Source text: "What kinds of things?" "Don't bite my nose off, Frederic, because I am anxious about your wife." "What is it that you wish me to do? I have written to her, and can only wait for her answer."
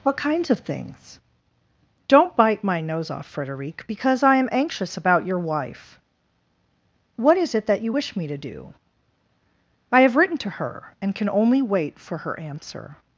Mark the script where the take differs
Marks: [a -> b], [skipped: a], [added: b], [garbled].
"What kinds of things?" "Don't bite my nose off, Frederic, because I am anxious about your wife." "What is it that you wish me to do? I have written to her, and can only wait for her answer."